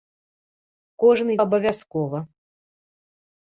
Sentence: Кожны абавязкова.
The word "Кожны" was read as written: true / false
true